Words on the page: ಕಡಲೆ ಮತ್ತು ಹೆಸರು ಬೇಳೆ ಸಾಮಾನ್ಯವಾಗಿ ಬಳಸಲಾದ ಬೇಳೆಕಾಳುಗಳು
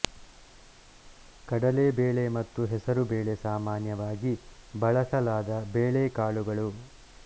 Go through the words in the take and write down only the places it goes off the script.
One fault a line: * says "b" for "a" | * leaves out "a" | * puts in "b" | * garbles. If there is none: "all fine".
* puts in "ಬೇಳೆ"